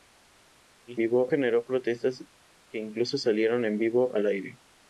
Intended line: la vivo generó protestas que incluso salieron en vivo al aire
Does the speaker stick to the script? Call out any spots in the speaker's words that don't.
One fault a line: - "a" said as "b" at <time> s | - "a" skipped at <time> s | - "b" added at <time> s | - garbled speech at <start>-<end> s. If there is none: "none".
none